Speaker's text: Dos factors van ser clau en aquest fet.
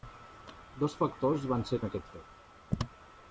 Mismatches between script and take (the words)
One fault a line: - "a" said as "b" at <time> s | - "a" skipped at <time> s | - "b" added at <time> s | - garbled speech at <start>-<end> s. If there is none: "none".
- "clau" skipped at 1.8 s